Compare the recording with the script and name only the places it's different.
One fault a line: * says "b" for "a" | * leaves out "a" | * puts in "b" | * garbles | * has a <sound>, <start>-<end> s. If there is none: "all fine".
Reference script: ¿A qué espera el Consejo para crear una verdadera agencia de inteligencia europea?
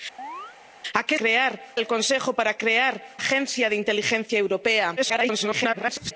* has a chirp, 0.2-0.6 s
* says "crear" for "espera"
* leaves out "una verdadera"
* garbles